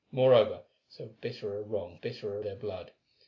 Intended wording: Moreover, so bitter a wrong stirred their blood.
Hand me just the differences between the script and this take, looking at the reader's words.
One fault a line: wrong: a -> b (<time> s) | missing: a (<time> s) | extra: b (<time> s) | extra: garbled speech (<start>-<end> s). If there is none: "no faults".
wrong: stirred -> bitter (2.0 s)